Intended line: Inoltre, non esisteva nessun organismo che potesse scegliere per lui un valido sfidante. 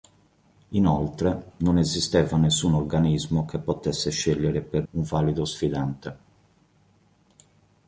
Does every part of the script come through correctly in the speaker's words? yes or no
no